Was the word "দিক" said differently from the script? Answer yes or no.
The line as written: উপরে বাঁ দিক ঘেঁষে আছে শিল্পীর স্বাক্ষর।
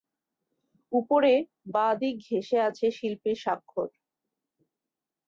no